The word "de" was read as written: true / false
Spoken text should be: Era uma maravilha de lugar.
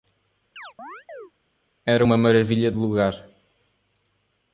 true